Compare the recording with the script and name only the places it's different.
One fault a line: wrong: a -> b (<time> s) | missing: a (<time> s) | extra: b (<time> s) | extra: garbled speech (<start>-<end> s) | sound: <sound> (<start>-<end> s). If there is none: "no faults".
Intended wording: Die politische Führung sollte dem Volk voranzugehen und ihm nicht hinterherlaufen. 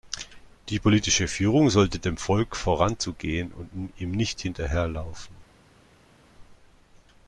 no faults